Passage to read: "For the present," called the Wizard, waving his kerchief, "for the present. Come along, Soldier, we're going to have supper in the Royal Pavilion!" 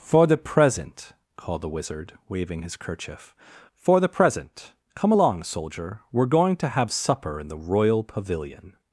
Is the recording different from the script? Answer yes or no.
no